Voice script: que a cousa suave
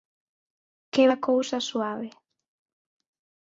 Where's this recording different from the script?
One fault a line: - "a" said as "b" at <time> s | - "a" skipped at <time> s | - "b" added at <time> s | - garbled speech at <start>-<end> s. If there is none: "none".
none